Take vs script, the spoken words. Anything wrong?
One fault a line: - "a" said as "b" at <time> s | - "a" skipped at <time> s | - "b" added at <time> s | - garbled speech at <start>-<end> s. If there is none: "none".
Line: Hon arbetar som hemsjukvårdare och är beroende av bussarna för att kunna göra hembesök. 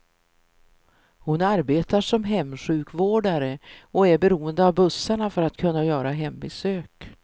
none